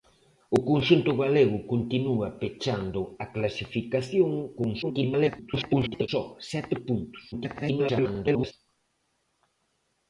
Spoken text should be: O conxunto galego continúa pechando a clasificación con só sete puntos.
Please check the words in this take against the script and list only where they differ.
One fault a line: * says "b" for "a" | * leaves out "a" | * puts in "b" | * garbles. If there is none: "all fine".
* garbles
* garbles